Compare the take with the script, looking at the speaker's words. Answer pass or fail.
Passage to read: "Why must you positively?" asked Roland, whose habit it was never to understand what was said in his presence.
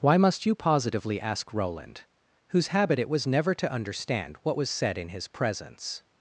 fail